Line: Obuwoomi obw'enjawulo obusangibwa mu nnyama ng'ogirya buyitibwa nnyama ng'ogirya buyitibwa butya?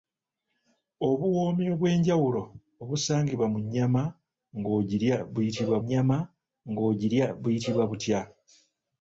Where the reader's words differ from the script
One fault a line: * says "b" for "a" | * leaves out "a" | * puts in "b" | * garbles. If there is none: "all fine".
all fine